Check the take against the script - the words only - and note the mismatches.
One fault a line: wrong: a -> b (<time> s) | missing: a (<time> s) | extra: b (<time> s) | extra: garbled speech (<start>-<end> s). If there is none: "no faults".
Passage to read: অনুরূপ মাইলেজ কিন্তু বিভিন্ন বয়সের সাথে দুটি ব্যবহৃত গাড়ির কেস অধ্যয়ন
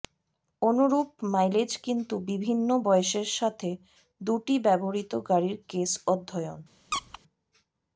no faults